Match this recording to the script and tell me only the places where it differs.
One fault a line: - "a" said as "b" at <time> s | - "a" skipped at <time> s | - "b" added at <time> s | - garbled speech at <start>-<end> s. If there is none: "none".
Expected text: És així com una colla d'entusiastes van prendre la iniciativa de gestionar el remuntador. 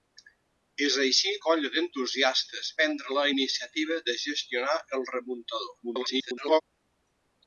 - "com una" skipped at 1.3 s
- "van" skipped at 2.7 s
- garbled speech at 5.8-6.6 s